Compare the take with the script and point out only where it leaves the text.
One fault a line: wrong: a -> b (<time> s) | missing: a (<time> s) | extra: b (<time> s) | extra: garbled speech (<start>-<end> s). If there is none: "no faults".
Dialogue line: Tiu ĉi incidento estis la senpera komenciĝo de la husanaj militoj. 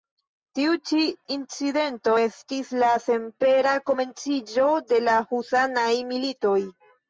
no faults